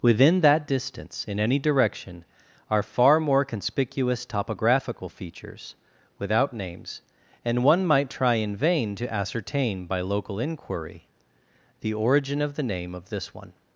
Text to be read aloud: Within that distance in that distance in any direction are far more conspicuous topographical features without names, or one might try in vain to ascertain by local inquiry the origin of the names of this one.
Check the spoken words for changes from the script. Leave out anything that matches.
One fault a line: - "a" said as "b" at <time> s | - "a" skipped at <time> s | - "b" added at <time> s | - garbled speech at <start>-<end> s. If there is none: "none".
- "that distance in" skipped at 1.4 s
- "or" said as "and" at 7.4 s
- "names" said as "name" at 12.6 s